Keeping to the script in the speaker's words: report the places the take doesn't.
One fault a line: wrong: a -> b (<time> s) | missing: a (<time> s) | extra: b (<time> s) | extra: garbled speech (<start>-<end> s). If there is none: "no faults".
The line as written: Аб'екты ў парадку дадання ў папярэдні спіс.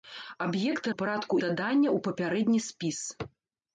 no faults